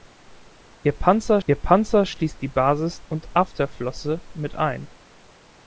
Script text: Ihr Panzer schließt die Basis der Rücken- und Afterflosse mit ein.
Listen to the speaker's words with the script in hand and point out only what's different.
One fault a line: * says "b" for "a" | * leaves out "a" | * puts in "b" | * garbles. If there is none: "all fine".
* puts in "ihr Panzer"
* leaves out "der Rücken"